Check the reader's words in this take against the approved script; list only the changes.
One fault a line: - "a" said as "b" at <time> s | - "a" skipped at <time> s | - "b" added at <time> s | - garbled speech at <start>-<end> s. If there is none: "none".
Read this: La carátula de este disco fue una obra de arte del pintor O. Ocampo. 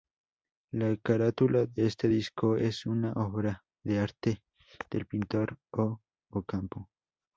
- "fue" said as "es" at 2.5 s